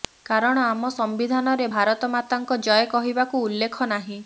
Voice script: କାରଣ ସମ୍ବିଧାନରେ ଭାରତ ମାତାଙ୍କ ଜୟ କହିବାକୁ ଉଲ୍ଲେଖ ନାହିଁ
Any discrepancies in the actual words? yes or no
yes